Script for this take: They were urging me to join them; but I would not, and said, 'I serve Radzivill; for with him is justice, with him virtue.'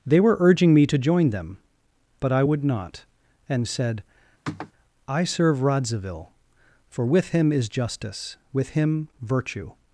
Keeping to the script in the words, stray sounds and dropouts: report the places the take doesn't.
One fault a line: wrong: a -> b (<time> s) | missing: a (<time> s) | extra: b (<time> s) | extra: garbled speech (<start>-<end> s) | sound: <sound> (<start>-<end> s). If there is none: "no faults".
sound: sniff (4.4-4.7 s)